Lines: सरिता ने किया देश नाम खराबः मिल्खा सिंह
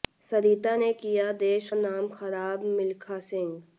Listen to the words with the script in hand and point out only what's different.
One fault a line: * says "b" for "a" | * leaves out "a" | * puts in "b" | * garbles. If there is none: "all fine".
all fine